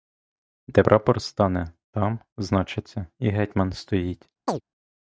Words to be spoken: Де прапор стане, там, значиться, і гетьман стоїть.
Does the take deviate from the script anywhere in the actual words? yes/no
no